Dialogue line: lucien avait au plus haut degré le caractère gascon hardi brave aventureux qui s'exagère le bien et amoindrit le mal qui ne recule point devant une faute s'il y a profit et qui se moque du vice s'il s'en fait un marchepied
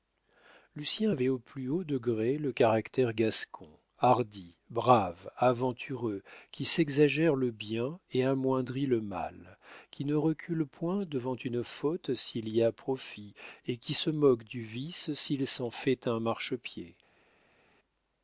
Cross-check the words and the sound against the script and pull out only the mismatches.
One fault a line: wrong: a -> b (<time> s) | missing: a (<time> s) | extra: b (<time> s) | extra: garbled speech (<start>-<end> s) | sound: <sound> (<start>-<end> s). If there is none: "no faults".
no faults